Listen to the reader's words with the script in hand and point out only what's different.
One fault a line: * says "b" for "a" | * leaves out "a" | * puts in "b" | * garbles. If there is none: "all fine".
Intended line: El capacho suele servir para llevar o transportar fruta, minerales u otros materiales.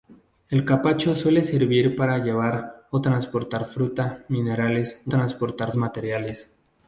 * says "transportar" for "otros"